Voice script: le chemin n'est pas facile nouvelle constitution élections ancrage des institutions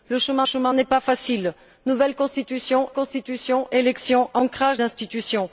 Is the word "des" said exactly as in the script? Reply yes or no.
no